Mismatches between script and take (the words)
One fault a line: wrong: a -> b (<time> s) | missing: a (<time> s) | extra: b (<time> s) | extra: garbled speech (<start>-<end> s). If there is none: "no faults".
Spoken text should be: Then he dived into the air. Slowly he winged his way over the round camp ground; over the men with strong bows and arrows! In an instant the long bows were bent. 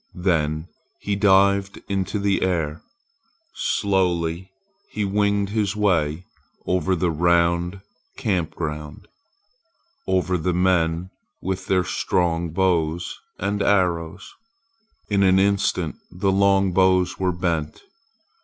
extra: their (11.7 s)